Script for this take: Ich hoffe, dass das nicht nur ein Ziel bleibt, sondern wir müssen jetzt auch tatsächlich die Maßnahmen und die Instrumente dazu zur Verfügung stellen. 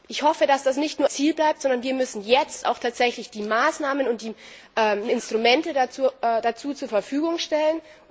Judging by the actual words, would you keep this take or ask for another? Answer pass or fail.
fail